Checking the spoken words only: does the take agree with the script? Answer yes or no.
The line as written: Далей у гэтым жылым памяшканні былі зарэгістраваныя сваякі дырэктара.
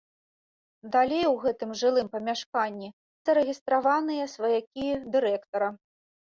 no